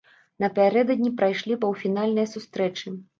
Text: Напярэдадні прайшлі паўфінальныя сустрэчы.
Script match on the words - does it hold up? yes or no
yes